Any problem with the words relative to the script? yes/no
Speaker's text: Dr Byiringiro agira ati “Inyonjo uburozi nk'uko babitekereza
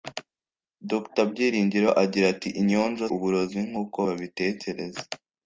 no